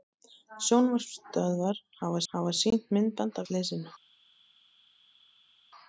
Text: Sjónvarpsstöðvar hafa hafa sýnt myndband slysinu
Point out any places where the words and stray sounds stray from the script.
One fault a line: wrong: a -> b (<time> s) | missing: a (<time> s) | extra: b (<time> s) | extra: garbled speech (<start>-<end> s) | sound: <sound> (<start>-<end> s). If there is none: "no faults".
no faults